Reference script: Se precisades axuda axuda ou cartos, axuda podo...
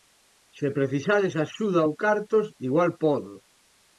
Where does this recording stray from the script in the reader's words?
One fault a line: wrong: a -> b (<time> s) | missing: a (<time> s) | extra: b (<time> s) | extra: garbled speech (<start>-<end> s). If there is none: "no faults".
missing: axuda (1.8 s)
wrong: axuda -> igual (2.7 s)